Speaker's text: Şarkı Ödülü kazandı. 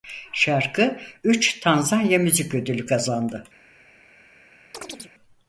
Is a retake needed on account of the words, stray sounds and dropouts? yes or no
yes